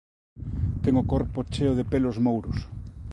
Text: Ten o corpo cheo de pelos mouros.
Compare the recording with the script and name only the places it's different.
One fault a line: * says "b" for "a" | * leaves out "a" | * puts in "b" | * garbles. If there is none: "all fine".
all fine